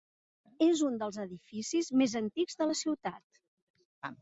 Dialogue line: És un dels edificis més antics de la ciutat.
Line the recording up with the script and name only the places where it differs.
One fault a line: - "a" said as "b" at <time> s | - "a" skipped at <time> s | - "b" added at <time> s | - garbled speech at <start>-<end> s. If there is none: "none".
none